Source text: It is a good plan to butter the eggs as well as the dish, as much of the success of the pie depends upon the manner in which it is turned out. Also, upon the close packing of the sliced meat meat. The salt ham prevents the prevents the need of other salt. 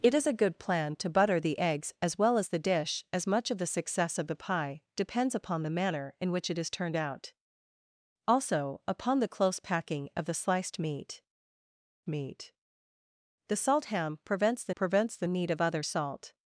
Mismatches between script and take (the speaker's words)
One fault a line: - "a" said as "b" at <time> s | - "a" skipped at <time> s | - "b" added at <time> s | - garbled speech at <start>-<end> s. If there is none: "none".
none